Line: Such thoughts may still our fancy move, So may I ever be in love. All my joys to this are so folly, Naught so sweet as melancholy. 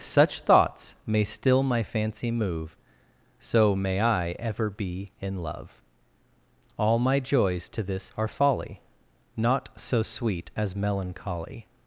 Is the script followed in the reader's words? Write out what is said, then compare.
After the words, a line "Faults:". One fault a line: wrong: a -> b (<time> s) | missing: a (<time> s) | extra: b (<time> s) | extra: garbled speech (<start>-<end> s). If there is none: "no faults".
Such thoughts may still my fancy move, So may I ever be in love. All my joys to this are folly, Naught so sweet as melancholy.
Faults:
wrong: our -> my (1.6 s)
missing: so (8.3 s)